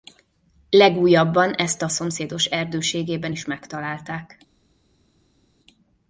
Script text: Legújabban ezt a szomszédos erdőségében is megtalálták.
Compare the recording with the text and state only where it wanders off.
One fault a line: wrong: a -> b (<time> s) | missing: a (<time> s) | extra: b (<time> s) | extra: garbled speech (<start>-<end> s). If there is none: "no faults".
no faults